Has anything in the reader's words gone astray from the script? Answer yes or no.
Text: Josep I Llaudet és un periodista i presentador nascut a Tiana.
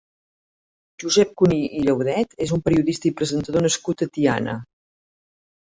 yes